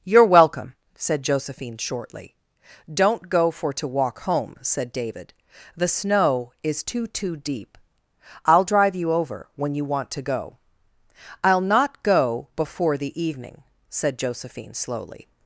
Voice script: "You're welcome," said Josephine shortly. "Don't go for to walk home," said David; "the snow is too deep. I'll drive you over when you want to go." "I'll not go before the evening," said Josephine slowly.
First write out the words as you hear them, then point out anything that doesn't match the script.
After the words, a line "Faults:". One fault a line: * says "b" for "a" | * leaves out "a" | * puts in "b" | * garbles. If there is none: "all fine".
"You're welcome," said Josephine shortly. "Don't go for to walk home," said David; "the snow is too too deep. I'll drive you over when you want to go." "I'll not go before the evening," said Josephine slowly.
Faults:
* puts in "too"